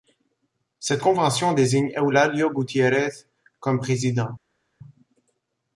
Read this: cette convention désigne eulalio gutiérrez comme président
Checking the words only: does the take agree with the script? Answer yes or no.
yes